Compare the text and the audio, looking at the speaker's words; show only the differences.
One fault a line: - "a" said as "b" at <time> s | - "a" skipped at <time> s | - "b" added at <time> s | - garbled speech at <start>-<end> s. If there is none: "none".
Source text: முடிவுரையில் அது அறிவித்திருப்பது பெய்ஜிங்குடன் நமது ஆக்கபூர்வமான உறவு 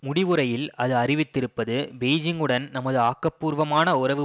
none